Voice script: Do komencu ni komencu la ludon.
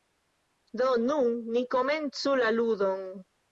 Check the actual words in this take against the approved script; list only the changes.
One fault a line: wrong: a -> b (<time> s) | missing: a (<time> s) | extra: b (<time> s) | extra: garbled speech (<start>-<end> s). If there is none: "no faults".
wrong: komencu -> nun (1.0 s)